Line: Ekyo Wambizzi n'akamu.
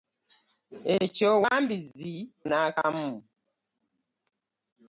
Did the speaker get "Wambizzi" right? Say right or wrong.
right